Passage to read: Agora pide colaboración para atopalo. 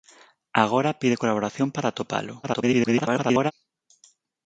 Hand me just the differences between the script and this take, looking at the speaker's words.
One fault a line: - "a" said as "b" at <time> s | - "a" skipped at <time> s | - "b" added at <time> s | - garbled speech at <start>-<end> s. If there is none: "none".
- garbled speech at 2.4-3.5 s